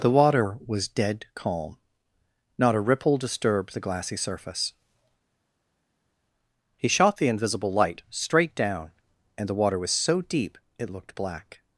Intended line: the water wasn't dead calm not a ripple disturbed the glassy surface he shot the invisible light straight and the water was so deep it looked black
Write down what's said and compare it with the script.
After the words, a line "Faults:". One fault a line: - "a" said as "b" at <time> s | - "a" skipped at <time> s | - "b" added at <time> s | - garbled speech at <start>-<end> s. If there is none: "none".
the water was dead calm not a ripple disturbed the glassy surface he shot the invisible light straight down and the water was so deep it looked black
Faults:
- "wasn't" said as "was" at 0.7 s
- "down" added at 8.6 s